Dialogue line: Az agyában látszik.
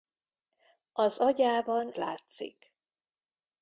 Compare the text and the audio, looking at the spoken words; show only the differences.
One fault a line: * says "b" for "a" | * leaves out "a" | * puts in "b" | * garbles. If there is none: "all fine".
all fine